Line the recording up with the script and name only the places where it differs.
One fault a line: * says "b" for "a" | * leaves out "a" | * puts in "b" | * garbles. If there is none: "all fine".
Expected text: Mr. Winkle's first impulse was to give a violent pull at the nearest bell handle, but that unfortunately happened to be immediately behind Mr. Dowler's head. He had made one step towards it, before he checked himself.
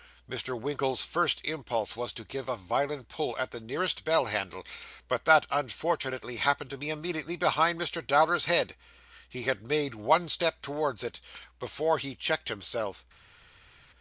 all fine